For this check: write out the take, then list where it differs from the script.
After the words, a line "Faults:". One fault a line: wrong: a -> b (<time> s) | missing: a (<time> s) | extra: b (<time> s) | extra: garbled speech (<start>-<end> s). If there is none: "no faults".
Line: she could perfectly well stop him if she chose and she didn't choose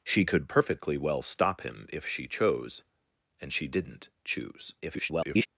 she could perfectly well stop him if she chose and she didn't choose [garbled]
Faults:
extra: garbled speech (4.8-5.5 s)